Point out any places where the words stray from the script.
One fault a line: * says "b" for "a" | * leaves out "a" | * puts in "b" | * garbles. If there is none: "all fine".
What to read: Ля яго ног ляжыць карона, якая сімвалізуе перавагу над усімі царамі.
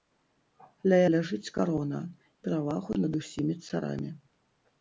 * leaves out "яго ног"
* leaves out "якая сімвалізуе"